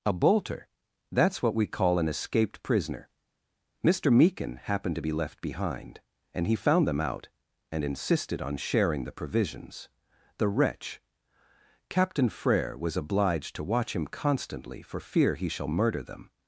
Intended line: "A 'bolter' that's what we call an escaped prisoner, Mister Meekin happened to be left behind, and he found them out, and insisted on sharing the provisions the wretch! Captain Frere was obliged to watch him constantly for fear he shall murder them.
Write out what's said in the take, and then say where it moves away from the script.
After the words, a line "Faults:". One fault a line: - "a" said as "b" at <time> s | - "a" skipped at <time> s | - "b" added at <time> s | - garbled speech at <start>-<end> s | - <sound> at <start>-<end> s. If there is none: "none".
"A 'bolter' that's what we call an escaped prisoner, Mister Meekin happened to be left behind, and he found them out, and insisted on sharing the provisions the wretch! Captain Frere was obliged to watch him constantly for fear he shall murder them.
Faults:
none